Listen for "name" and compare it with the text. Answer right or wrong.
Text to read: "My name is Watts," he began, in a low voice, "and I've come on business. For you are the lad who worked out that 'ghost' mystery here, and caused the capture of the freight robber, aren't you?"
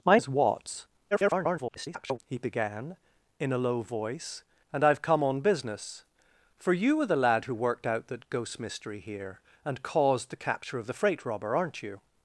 wrong